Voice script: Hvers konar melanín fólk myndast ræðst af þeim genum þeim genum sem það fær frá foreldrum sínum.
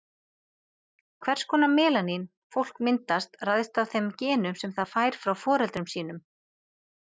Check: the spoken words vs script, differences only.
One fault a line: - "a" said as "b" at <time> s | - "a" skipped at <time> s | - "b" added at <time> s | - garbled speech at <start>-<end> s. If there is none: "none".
- "þeim genum" skipped at 4.6 s